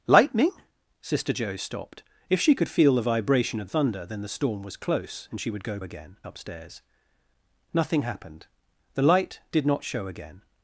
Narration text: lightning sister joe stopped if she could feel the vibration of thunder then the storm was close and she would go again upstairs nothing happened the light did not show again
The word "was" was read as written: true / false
true